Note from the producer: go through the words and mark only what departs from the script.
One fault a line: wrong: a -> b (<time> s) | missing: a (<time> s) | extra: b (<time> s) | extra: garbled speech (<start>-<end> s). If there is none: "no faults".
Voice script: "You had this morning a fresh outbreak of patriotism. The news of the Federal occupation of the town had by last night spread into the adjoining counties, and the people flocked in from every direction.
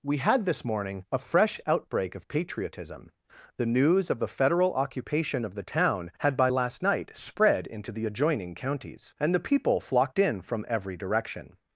wrong: You -> We (0.0 s)